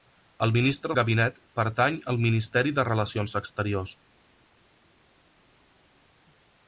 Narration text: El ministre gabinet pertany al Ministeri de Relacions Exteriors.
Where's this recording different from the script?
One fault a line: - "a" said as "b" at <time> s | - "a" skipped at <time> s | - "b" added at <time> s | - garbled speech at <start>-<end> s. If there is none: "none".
none